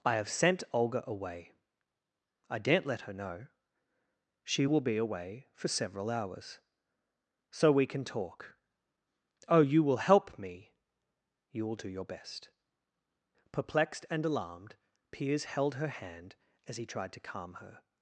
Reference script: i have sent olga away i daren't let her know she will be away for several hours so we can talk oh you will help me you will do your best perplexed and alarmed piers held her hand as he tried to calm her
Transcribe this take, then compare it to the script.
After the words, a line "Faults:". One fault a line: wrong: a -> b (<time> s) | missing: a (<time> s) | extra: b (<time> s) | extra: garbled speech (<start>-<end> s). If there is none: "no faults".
i have sent olga away i daren't let her know she will be away for several hours so we can talk oh you will help me you will do your best perplexed and alarmed piers held her hand as he tried to calm her
Faults:
no faults